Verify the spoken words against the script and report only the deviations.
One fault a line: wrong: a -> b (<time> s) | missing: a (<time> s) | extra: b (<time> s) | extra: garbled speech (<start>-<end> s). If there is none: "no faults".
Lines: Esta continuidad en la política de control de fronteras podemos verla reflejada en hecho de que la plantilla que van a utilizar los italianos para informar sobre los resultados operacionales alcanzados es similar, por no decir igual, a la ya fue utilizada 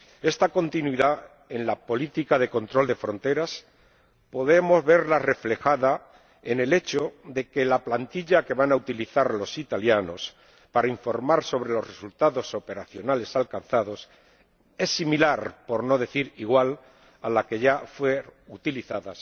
extra: el (6.6 s)
extra: que (17.5 s)